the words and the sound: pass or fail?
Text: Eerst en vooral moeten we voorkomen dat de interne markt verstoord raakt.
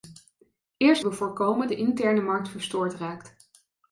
fail